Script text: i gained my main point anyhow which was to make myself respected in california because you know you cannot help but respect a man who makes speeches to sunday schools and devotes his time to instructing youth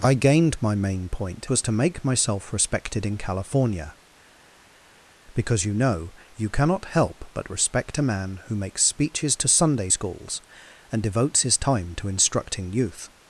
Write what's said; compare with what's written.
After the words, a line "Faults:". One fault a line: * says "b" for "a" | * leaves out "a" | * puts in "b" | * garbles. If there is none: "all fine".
i gained my main point was to make myself respected in california because you know you cannot help but respect a man who makes speeches to sunday schools and devotes his time to instructing youth
Faults:
* leaves out "anyhow which"